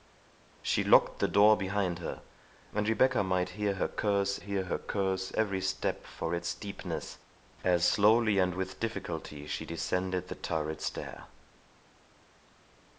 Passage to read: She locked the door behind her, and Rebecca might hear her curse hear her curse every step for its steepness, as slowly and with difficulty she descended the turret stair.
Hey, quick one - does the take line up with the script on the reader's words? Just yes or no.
yes